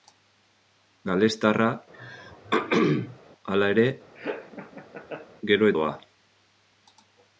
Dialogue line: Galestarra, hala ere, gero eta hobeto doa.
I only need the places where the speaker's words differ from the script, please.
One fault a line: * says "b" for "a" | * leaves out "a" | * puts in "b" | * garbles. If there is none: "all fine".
* leaves out "eta hobeto"